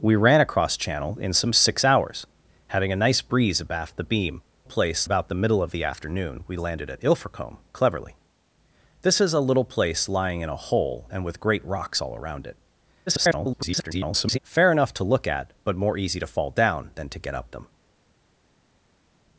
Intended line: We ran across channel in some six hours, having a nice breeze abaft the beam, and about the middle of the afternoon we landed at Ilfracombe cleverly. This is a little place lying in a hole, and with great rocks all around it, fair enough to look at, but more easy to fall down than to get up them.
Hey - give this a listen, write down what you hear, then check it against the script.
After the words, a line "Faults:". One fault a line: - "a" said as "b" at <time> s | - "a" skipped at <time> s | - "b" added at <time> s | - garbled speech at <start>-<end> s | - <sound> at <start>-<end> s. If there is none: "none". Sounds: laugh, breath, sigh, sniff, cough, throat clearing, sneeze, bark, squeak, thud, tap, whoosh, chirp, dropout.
We ran across channel in some six hours, having a nice breeze abaft the beam, place about the middle of the afternoon we landed at Ilfracombe cleverly. This is a little place lying in a hole, and with great rocks all around it, [garbled] fair enough to look at, but more easy to fall down than to get up them.
Faults:
- "and" said as "place" at 4.6 s
- garbled speech at 13.1-14.4 s